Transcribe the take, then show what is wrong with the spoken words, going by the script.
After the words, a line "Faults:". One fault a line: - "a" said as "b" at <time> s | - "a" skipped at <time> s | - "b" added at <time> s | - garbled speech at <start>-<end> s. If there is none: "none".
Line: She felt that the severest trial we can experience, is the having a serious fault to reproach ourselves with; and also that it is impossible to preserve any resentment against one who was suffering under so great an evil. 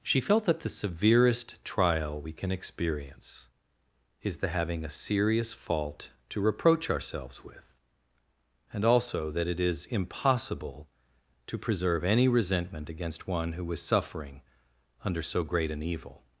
She felt that the severest trial we can experience, is the having a serious fault to reproach ourselves with; and also that it is impossible to preserve any resentment against one who was suffering under so great an evil.
Faults:
none